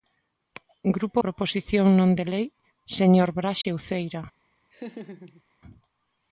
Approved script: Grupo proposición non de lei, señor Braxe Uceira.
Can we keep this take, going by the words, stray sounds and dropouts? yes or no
no